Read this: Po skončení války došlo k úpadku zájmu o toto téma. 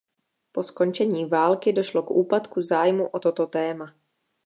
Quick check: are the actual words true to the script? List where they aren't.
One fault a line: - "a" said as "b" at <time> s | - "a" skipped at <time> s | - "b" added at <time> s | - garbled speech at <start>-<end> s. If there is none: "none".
none